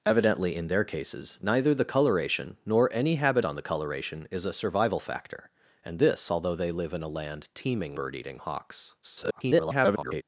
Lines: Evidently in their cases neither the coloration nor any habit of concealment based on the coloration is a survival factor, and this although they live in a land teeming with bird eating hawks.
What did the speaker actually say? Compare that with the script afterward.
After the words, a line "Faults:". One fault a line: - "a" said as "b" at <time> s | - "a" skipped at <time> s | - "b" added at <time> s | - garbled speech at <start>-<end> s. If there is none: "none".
Evidently in their cases neither the coloration nor any habit on the coloration is a survival factor, and this although they live in a land teeming bird eating hawks. [garbled]
Faults:
- "of concealment based" skipped at 3.5 s
- "with" skipped at 8.0 s
- garbled speech at 9.0-10.2 s